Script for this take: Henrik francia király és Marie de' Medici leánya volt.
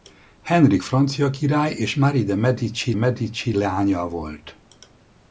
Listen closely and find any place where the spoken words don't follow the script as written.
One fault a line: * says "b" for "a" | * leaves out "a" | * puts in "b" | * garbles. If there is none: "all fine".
* puts in "Medici"